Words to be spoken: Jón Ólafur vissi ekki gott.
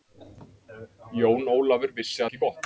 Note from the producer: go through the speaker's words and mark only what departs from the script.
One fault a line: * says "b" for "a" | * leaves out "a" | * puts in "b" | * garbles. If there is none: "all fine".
all fine